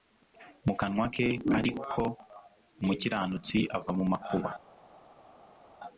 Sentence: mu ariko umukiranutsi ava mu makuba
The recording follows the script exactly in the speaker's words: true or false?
false